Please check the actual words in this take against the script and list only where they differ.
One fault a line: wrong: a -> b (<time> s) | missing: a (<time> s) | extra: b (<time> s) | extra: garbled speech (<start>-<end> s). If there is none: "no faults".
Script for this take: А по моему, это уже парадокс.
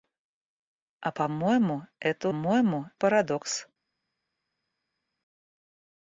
wrong: уже -> моему (2.3 s)